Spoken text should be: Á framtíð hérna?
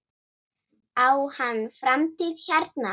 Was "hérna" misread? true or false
false